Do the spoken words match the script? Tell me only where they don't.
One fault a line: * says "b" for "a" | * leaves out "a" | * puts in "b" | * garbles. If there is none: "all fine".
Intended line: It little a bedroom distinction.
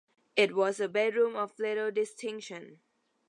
* says "was" for "little"
* puts in "of little"